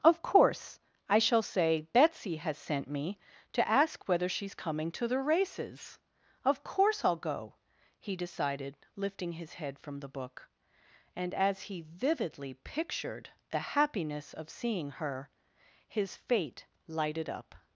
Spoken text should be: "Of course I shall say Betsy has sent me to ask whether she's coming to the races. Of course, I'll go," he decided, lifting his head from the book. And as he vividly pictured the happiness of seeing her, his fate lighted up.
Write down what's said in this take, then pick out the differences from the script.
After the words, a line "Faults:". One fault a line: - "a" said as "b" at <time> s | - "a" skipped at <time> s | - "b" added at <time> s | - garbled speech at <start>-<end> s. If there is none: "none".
"Of course I shall say Betsy has sent me to ask whether she's coming to the races. Of course, I'll go," he decided, lifting his head from the book. And as he vividly pictured the happiness of seeing her, his fate lighted up.
Faults:
none